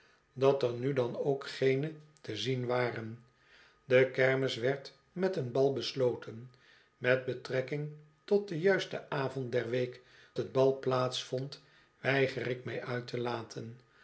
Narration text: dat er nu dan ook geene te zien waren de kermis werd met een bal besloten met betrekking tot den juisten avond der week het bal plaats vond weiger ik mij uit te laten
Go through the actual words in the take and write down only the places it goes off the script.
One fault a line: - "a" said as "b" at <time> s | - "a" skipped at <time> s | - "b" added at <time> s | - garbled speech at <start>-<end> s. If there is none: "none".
none